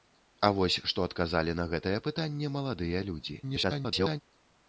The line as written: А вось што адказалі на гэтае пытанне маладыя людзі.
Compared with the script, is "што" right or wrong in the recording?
right